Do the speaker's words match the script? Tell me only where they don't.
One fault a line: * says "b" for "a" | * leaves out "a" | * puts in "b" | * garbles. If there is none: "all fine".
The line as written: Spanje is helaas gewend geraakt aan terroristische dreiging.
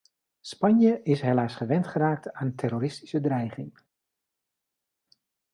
all fine